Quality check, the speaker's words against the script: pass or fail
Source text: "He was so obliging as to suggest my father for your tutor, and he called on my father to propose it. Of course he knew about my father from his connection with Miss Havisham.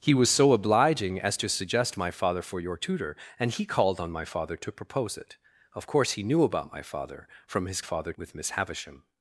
fail